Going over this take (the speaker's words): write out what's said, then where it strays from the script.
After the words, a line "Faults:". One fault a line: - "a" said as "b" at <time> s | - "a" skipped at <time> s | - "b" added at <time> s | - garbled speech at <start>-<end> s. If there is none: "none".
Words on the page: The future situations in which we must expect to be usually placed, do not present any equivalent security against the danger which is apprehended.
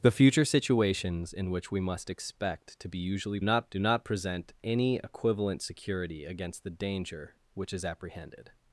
The future situations in which we must expect to be usually not, do not present any equivalent security against the danger which is apprehended.
Faults:
- "placed" said as "not" at 3.4 s